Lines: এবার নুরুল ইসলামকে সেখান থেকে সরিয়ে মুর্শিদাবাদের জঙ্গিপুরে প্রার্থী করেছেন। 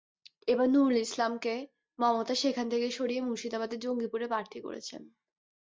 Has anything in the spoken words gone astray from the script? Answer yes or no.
yes